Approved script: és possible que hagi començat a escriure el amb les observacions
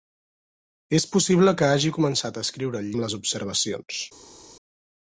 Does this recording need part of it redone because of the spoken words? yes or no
no